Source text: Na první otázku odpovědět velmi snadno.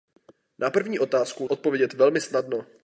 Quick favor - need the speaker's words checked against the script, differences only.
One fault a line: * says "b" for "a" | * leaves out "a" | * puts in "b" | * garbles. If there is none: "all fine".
all fine